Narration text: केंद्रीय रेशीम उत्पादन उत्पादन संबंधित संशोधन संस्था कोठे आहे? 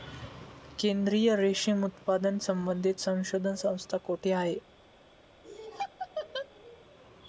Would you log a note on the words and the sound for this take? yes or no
yes